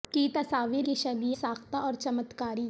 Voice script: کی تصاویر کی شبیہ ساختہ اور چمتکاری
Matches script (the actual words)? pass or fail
pass